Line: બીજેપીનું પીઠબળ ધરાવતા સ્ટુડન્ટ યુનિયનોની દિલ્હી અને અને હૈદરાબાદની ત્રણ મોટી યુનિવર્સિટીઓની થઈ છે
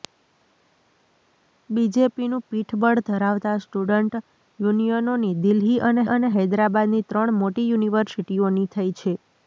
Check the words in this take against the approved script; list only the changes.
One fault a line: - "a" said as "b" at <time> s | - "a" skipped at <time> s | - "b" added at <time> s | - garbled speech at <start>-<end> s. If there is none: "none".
none